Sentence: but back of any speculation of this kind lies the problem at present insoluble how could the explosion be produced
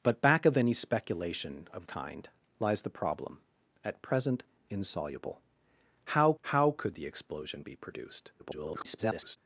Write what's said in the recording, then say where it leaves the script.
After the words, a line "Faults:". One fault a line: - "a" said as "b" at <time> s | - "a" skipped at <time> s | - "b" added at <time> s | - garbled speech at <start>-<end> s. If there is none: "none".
but back of any speculation of kind lies the problem at present insoluble how how could the explosion be produced [garbled]
Faults:
- "this" skipped at 1.9 s
- "how" added at 6.4 s
- garbled speech at 8.4-9.4 s